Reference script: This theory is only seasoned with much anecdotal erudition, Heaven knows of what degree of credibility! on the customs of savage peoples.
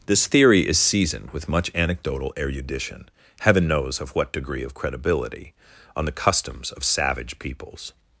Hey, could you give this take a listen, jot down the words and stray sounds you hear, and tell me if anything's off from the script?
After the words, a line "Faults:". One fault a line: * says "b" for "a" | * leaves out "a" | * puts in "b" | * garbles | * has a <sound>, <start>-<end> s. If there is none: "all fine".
This theory is seasoned with much anecdotal erudition, Heaven knows of what degree of credibility! on the customs of savage peoples.
Faults:
* leaves out "only"